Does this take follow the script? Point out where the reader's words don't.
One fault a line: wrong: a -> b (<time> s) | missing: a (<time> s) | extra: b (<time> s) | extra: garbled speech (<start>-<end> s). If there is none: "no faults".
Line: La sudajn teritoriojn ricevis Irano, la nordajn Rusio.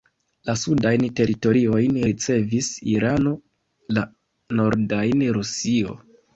no faults